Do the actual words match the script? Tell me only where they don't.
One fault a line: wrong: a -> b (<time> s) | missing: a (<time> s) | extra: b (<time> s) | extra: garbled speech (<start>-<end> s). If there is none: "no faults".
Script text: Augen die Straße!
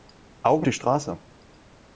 no faults